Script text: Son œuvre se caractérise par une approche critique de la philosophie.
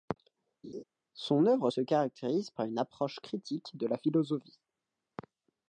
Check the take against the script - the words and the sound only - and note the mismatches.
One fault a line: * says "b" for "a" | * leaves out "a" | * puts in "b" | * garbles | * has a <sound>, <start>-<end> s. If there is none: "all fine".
* has a laugh, 0.6-0.8 s